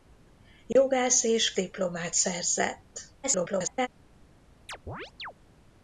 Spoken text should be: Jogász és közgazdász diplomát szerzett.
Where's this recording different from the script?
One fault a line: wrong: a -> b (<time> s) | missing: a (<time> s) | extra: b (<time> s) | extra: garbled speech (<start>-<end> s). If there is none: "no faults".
missing: közgazdász (1.5 s)
extra: garbled speech (3.2-3.9 s)